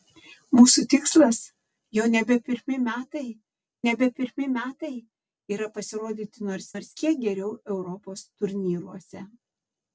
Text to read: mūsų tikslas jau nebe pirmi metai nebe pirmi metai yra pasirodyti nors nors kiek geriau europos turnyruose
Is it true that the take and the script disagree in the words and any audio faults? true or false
false